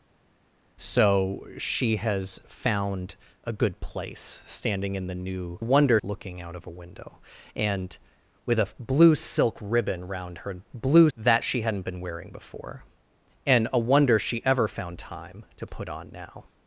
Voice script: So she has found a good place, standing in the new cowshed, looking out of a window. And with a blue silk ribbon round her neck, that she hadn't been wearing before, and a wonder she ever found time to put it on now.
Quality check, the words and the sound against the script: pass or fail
fail